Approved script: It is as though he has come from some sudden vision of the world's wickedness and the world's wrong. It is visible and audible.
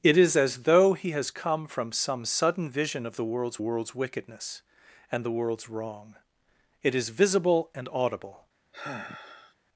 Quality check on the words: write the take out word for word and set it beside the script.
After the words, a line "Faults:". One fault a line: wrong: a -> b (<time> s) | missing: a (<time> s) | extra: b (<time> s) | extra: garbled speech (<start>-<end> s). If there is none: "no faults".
It is as though he has come from some sudden vision of the world's world's wickedness and the world's wrong. It is visible and audible.
Faults:
extra: world's (3.6 s)